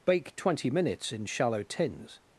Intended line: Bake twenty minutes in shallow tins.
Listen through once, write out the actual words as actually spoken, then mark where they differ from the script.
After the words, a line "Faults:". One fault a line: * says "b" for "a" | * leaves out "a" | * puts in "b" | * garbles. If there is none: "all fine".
Bake twenty minutes in shallow tins.
Faults:
all fine